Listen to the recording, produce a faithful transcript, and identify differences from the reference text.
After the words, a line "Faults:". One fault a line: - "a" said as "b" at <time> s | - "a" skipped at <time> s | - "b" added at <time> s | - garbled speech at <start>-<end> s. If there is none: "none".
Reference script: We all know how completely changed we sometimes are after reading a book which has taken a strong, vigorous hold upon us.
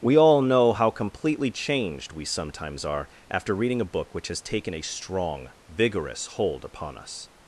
We all know how completely changed we sometimes are after reading a book which has taken a strong, vigorous hold upon us.
Faults:
none